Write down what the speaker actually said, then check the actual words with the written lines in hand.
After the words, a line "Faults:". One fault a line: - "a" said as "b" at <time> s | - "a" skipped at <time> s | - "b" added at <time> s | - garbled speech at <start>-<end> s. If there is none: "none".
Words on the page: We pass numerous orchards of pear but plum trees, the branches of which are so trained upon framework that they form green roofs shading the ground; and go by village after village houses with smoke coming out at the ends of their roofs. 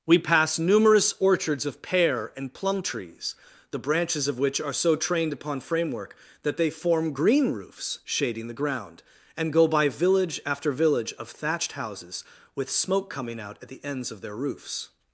We pass numerous orchards of pear and plum trees, the branches of which are so trained upon framework that they form green roofs shading the ground; and go by village after village of thatched houses with smoke coming out at the ends of their roofs.
Faults:
- "but" said as "and" at 2.4 s
- "of thatched" added at 11.1 s